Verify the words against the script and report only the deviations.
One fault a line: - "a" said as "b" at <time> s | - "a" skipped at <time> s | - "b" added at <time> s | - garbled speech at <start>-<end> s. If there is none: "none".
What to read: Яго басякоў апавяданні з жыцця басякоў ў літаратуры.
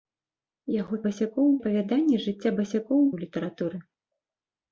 none